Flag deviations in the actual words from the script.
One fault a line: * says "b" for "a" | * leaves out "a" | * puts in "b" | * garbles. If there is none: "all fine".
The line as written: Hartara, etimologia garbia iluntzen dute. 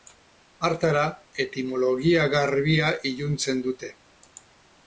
all fine